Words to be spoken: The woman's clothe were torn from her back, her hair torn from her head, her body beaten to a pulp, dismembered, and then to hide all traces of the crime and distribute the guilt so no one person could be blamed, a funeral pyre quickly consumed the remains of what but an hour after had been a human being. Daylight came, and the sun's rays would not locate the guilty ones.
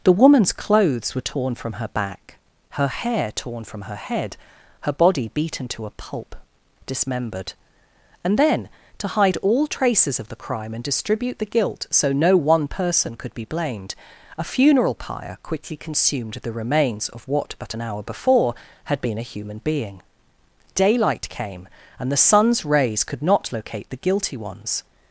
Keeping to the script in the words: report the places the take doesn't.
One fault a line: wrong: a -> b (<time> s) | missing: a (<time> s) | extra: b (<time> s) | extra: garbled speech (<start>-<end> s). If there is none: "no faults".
wrong: clothe -> clothes (0.5 s)
wrong: after -> before (18.0 s)
wrong: would -> could (23.0 s)